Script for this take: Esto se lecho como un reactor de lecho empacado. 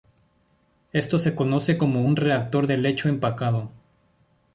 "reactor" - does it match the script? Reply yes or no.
yes